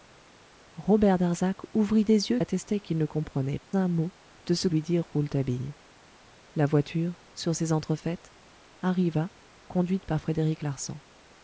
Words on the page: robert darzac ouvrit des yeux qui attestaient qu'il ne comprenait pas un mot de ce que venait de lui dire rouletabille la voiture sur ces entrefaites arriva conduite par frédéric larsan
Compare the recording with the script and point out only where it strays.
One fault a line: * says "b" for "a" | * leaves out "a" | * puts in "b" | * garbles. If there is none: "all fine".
* leaves out "qui"
* leaves out "pas"
* leaves out "que venait de"